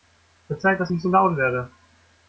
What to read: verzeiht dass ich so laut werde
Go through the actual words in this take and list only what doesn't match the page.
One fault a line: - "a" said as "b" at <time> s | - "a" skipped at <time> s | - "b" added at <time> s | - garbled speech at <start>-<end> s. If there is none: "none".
none